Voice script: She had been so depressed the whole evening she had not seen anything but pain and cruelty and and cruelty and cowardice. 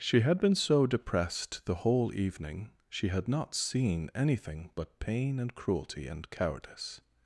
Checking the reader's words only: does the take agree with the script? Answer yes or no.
no